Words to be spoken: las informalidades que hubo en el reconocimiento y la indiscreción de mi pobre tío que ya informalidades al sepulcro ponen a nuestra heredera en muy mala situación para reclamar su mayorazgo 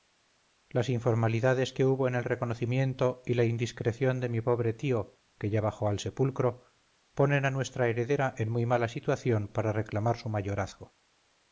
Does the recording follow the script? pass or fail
fail